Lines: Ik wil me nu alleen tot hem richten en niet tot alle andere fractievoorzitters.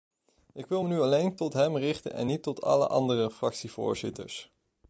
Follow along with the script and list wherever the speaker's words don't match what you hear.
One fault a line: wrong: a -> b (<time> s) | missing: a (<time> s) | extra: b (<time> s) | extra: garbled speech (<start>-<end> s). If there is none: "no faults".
no faults